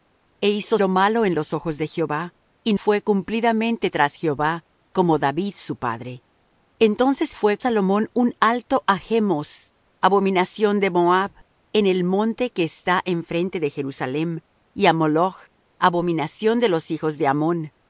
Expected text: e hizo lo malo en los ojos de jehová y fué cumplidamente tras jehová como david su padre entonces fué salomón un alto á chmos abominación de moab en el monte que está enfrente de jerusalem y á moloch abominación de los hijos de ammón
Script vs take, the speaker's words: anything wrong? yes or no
no